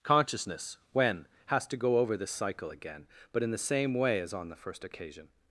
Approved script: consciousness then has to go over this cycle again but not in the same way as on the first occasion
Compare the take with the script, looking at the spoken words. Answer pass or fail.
fail